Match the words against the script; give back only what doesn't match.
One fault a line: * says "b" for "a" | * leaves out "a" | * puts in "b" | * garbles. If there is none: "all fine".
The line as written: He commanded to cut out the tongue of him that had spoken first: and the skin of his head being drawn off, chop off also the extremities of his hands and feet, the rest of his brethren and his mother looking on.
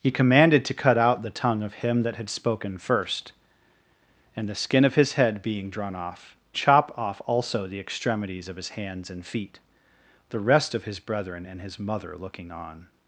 all fine